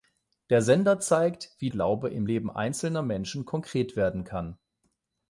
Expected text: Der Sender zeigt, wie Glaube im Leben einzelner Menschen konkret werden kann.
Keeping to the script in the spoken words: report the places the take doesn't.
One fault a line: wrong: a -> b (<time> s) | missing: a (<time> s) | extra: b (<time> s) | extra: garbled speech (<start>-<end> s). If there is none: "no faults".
no faults